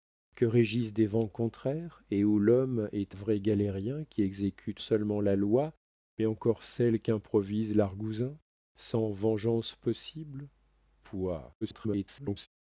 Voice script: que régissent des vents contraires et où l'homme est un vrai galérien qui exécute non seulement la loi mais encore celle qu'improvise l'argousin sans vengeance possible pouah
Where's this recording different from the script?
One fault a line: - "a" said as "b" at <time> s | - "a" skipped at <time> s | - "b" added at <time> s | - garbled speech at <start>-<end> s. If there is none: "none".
- "un" skipped at 3.1 s
- "non" skipped at 4.8 s
- garbled speech at 11.6-12.5 s